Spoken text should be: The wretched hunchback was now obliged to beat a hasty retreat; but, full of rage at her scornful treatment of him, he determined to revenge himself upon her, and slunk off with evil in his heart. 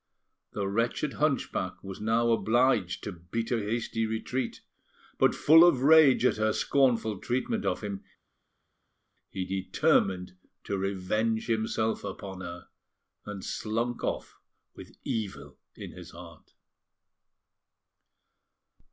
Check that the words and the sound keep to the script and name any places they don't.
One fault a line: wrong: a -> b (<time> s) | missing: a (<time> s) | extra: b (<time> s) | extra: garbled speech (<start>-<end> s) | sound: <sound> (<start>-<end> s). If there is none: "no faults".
no faults